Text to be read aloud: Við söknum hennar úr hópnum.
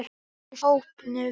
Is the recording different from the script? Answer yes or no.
yes